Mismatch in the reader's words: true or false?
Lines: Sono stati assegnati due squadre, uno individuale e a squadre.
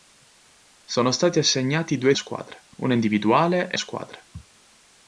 false